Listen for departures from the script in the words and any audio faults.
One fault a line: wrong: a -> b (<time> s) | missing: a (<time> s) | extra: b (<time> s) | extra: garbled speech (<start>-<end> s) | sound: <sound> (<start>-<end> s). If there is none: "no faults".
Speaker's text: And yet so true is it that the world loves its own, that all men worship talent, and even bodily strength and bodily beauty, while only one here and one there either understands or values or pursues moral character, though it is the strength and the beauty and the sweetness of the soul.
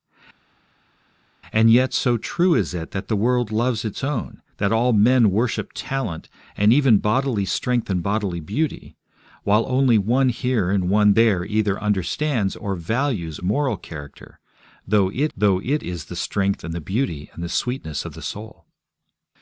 wrong: or pursues moral character -> moral character though it (13.4 s)